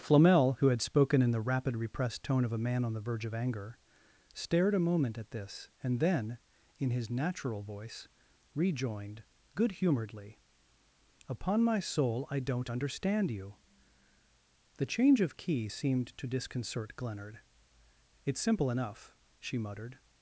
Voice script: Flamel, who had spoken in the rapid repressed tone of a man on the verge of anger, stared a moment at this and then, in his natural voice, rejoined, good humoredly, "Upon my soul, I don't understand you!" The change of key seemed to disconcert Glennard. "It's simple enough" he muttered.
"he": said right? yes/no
no